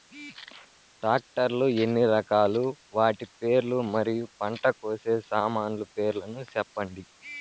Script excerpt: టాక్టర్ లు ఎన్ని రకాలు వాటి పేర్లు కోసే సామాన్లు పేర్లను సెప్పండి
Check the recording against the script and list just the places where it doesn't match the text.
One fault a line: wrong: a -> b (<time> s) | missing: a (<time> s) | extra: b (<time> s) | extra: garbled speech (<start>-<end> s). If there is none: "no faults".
extra: మరియు పంట (3.9 s)